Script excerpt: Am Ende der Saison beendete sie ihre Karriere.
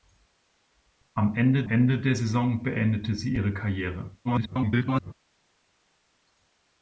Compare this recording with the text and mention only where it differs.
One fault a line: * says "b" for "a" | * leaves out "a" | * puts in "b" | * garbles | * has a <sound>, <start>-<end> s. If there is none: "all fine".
* puts in "Ende"
* garbles